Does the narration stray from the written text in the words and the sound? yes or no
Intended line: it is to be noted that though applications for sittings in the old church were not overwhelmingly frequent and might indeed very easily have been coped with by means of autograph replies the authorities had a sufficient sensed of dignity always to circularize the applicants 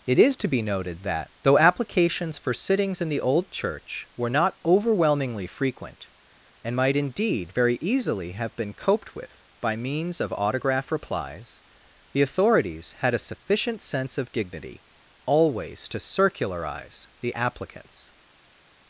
yes